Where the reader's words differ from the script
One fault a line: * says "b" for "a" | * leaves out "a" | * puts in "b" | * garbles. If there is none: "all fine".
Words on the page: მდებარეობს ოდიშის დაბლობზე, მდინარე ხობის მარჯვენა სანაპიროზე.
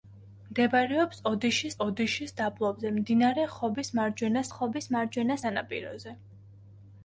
* puts in "ოდიშის"
* puts in "ხობის მარჯვენა"